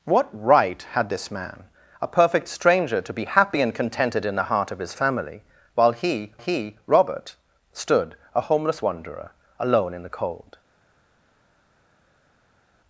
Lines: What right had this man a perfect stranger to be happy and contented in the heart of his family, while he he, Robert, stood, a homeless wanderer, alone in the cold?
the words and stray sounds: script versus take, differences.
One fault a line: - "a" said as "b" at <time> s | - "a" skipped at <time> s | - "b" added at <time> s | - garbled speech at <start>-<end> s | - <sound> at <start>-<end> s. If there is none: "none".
none